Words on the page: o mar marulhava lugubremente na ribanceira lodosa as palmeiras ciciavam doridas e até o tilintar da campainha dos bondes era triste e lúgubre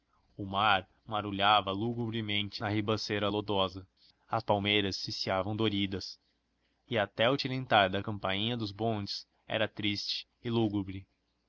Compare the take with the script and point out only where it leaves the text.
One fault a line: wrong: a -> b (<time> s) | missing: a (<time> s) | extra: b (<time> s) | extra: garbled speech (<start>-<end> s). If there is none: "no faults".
no faults